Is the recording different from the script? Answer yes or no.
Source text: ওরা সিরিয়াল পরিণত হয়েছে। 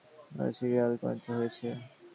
no